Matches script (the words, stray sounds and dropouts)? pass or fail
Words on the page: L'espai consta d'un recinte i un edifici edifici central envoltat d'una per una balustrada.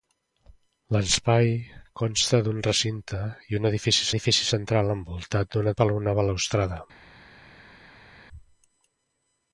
pass